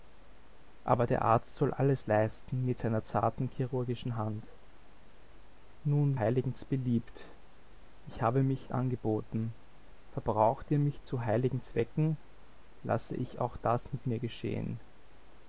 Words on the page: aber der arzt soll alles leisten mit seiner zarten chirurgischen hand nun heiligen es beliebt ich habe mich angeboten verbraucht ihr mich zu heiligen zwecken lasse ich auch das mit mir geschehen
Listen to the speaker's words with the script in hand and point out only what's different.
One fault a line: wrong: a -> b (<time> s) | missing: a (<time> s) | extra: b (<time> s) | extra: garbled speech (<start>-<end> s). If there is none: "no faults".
no faults